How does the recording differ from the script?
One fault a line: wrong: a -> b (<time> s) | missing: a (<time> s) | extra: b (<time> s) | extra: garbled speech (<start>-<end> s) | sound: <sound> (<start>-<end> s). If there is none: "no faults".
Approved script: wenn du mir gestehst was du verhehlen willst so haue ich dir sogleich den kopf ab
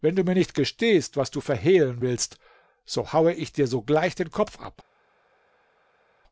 extra: nicht (0.3 s)